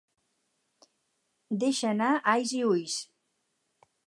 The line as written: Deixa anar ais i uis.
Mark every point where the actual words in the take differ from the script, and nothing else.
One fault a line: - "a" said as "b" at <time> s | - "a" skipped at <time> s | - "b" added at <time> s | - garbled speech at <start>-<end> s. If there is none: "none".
none